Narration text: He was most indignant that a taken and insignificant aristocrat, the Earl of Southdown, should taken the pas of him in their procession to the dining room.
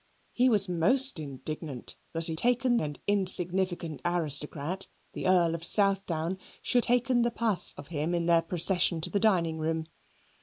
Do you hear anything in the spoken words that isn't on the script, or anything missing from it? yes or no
no